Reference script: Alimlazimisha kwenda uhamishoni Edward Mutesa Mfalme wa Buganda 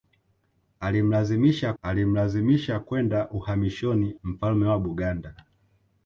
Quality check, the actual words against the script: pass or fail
fail